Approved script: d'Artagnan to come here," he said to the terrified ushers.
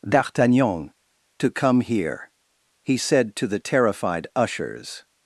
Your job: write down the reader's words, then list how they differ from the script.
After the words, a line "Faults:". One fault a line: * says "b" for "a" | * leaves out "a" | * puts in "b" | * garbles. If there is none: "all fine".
d'Artagnan to come here," he said to the terrified ushers.
Faults:
all fine